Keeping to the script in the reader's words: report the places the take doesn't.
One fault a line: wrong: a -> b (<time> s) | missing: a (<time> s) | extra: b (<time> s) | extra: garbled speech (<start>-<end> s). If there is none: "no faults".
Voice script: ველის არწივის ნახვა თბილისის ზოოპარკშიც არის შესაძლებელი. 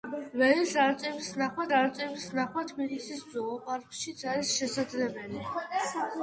extra: არწივის ნახვა (1.8 s)